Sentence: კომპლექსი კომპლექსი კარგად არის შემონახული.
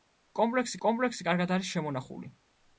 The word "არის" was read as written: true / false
true